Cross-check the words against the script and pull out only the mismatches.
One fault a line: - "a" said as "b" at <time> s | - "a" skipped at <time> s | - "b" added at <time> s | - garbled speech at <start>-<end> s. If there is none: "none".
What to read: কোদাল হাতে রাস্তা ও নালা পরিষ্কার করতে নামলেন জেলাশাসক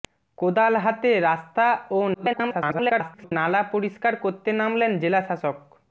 - garbled speech at 2.1-3.3 s